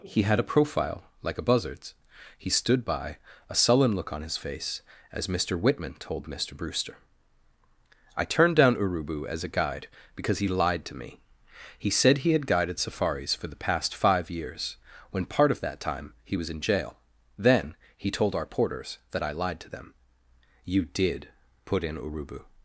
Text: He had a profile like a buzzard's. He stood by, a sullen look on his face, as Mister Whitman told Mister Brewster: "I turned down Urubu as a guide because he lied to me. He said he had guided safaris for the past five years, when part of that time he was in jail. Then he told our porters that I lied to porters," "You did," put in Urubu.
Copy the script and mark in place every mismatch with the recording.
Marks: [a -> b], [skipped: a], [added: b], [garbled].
He had a profile like a buzzard's. He stood by, a sullen look on his face, as Mister Whitman told Mister Brewster: "I turned down Urubu as a guide because he lied to me. He said he had guided safaris for the past five years, when part of that time he was in jail. Then he told our porters that I lied to [porters," -> them] "You did," put in Urubu.